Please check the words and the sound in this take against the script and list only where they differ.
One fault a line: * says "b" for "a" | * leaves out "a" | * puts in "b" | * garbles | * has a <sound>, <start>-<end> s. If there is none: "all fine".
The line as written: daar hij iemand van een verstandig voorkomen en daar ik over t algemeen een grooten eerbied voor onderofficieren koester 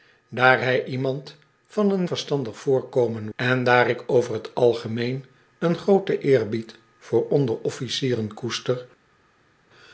all fine